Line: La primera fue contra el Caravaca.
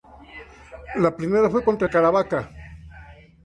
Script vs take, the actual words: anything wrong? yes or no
no